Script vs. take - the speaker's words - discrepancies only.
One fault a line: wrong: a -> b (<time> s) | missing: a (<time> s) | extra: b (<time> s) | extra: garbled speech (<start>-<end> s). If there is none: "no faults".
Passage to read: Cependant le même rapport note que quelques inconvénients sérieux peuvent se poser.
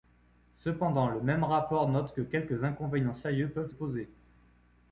missing: se (3.7 s)